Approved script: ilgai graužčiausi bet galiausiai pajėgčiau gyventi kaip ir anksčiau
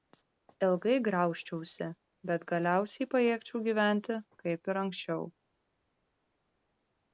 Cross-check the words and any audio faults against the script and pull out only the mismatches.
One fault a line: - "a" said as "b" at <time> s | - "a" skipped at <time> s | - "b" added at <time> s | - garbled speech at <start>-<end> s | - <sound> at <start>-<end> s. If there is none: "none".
none